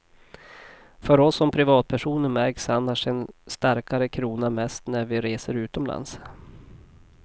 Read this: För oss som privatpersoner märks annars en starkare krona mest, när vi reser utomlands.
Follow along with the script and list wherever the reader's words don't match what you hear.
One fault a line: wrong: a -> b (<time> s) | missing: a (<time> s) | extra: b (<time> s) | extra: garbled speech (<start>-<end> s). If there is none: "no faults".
no faults